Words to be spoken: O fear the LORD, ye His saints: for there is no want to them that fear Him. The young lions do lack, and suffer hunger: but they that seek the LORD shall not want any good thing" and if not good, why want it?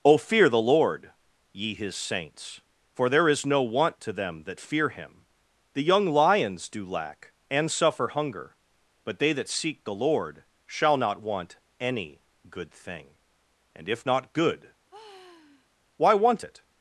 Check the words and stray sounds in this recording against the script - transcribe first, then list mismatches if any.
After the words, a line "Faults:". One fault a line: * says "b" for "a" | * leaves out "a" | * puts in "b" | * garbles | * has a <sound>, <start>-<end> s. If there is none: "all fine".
O fear the LORD, ye His saints: for there is no want to them that fear Him. The young lions do lack, and suffer hunger: but they that seek the LORD shall not want any good thing" and if not good, why want it?
Faults:
* has a sigh, 14.9-15.7 s